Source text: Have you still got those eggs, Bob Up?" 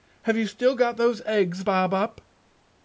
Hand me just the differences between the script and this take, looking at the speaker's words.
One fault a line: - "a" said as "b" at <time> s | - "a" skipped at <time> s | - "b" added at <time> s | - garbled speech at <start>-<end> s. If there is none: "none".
none